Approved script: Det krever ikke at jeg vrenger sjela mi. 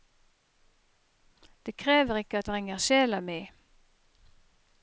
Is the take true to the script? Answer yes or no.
no